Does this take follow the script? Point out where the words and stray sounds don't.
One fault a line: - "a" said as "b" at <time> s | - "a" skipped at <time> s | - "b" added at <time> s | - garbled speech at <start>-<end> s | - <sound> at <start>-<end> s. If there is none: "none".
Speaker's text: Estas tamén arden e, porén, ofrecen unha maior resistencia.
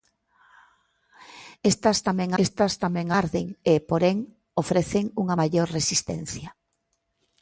- "estas tamén" added at 2.4 s